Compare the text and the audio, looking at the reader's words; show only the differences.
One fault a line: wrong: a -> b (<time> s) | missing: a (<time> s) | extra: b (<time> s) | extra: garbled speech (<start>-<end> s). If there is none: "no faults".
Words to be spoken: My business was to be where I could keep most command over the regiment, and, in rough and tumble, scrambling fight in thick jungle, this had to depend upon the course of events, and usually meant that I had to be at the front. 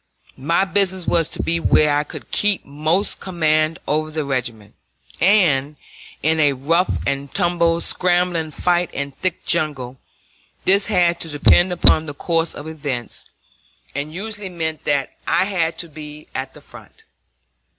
extra: a (6.4 s)